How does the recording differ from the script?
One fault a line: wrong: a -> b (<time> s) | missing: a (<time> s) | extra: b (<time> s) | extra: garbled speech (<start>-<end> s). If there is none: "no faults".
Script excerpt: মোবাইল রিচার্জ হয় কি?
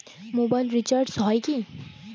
no faults